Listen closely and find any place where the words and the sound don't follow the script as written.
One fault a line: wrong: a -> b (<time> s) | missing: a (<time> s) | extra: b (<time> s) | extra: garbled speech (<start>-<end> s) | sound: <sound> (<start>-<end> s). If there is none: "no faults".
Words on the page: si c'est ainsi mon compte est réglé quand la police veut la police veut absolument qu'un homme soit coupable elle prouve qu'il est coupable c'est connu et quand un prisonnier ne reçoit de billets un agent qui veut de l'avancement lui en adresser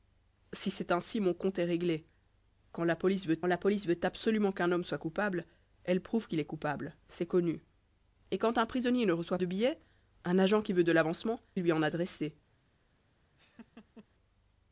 sound: laugh (13.4-14.1 s)